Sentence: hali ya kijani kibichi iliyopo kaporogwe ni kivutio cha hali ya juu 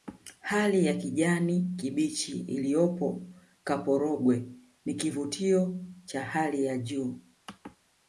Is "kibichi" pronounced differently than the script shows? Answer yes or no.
no